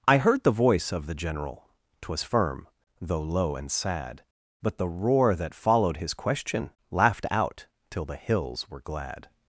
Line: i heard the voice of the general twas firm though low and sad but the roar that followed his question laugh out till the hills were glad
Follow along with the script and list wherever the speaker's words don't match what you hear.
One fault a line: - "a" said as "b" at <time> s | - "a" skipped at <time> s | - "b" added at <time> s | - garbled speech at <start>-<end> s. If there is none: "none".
- "laugh" said as "laughed" at 6.9 s